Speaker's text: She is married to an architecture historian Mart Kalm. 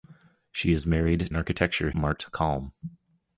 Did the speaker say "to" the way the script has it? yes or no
no